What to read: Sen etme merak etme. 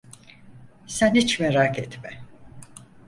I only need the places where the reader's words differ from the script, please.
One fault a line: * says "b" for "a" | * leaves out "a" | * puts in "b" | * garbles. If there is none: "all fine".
* says "hiç" for "etme"